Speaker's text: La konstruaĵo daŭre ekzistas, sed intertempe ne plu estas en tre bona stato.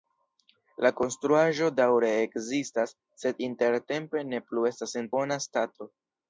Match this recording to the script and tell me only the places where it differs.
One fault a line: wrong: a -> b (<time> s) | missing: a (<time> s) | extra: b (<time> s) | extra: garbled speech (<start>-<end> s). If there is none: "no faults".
missing: tre (5.2 s)